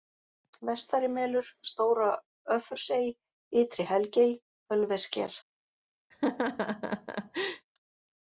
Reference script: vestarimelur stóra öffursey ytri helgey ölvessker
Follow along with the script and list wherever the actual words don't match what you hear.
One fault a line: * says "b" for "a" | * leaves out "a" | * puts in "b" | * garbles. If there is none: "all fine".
all fine